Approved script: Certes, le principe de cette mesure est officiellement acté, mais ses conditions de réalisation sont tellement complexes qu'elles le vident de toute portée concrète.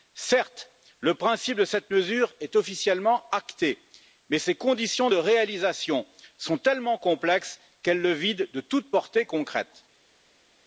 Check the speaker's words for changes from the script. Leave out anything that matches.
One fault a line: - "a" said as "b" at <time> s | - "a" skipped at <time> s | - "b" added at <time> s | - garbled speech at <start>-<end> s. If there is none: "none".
none